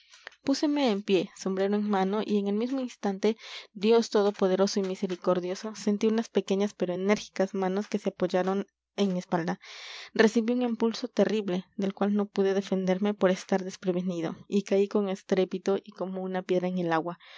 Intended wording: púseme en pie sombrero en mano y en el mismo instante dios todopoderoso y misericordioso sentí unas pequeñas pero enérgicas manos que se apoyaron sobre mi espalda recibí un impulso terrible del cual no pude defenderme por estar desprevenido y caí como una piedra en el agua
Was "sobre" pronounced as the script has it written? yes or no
no